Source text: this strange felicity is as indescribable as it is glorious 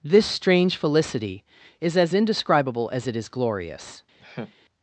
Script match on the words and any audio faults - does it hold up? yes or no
no